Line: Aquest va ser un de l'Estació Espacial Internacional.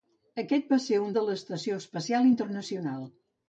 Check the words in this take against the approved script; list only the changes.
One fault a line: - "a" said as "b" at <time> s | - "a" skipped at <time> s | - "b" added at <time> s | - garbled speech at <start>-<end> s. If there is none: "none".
none